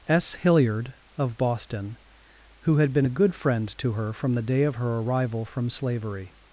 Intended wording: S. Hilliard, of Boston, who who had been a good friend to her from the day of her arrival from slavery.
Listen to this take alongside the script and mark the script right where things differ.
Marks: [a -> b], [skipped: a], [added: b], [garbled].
S. Hilliard, of Boston, who [skipped: who] had been a good friend to her from the day of her arrival from slavery.